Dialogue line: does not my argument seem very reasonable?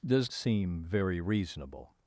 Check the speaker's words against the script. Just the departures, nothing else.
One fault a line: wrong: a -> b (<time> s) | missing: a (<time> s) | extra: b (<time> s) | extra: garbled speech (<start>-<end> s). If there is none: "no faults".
missing: not my argument (0.3 s)